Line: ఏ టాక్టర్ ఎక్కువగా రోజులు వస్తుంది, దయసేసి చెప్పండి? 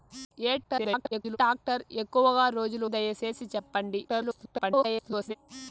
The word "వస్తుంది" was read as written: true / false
false